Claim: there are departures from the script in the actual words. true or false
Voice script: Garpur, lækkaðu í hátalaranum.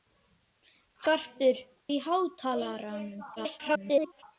true